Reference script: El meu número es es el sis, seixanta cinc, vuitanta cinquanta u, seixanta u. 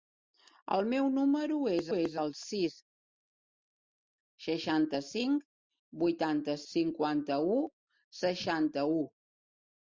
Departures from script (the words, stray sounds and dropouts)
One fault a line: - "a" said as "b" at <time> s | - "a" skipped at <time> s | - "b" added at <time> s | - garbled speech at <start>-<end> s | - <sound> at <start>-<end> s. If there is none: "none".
none